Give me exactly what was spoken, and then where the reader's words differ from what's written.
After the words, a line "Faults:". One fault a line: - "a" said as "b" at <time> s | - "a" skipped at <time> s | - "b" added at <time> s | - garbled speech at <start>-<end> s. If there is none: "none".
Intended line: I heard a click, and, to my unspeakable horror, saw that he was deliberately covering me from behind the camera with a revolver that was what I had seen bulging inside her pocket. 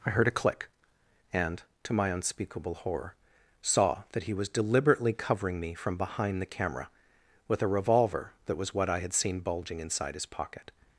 I heard a click, and, to my unspeakable horror, saw that he was deliberately covering me from behind the camera with a revolver that was what I had seen bulging inside his pocket.
Faults:
- "her" said as "his" at 10.1 s